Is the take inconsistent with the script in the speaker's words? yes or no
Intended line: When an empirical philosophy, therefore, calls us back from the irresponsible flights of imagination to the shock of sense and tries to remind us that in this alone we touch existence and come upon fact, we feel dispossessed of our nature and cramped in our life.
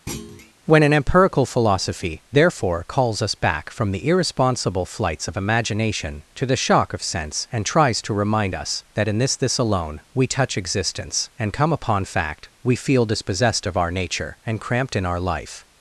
yes